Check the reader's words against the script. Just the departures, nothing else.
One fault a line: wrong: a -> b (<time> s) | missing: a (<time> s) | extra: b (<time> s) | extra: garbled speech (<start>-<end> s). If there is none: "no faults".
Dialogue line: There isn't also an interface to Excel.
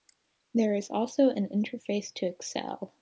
wrong: isn't -> is (0.7 s)